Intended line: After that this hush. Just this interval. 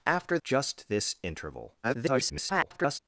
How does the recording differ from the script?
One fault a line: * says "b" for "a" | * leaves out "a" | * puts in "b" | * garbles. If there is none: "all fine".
* leaves out "that this hush"
* garbles